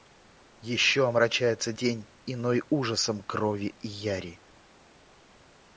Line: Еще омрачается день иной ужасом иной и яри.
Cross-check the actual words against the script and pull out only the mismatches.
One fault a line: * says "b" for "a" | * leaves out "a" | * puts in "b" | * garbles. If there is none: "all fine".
* says "крови" for "иной"